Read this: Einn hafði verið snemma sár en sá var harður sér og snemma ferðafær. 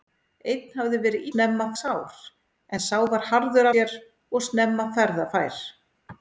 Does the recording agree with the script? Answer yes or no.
yes